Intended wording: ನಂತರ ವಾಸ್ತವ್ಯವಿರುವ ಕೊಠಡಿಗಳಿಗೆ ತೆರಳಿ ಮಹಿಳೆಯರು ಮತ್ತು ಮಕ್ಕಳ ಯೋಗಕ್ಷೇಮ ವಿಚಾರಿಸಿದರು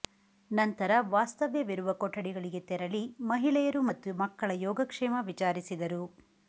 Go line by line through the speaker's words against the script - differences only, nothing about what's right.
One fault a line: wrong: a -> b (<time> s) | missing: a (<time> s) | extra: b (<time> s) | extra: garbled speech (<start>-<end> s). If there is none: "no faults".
no faults